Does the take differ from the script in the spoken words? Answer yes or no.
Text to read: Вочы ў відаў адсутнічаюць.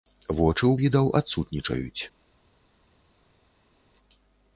no